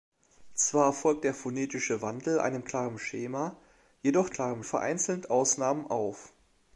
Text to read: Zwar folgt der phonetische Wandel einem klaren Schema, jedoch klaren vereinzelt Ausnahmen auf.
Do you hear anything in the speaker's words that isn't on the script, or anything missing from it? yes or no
no